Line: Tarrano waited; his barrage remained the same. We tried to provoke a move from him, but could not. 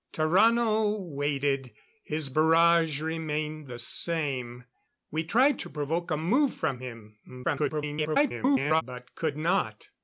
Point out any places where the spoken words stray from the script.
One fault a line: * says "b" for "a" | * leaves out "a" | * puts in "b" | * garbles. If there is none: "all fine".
* garbles